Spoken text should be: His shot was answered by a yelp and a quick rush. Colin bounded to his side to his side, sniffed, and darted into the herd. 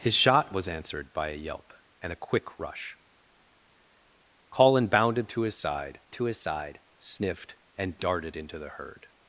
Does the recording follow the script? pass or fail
pass